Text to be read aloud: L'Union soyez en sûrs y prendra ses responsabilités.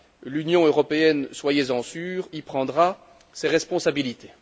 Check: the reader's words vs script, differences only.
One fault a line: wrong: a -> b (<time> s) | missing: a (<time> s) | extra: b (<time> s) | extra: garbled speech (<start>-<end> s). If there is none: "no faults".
extra: européenne (0.7 s)